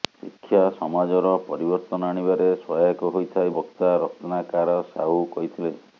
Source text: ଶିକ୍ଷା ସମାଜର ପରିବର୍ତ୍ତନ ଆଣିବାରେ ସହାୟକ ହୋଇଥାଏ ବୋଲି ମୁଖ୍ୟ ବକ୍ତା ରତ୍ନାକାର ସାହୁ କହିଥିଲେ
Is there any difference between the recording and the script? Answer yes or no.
yes